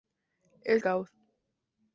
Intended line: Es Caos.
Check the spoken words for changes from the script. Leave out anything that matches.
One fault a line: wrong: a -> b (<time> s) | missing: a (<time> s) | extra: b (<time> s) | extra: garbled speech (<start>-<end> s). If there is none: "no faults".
no faults